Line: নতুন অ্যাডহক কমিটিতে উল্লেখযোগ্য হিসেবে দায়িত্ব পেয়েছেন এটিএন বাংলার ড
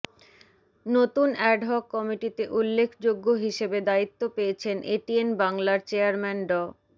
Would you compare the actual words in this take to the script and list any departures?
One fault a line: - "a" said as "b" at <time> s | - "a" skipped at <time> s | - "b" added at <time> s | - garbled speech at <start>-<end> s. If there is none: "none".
- "চেয়ারম্যান" added at 5.9 s